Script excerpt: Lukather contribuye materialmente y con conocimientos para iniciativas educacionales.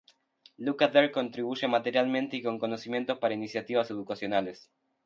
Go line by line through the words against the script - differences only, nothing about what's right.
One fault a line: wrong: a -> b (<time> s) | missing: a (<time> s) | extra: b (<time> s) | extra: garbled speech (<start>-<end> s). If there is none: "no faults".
no faults